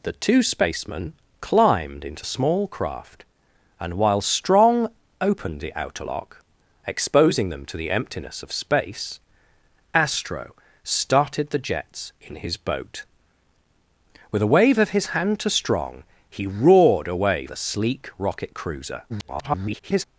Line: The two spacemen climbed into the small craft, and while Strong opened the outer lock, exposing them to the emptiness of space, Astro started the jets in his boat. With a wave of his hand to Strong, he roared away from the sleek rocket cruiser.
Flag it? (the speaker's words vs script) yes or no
yes